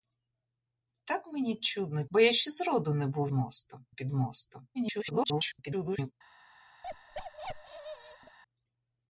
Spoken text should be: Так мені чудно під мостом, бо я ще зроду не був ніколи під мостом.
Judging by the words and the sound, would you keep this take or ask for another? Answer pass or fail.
fail